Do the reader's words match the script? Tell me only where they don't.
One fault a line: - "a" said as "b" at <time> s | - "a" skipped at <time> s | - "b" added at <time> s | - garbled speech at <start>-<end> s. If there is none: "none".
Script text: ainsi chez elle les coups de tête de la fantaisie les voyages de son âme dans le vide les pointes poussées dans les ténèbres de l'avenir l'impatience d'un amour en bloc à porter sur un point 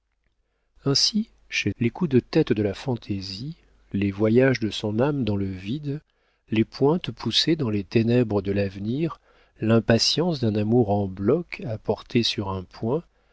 - "elle" skipped at 1.7 s